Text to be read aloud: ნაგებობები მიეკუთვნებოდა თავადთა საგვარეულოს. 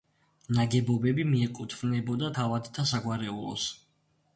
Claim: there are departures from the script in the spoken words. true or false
false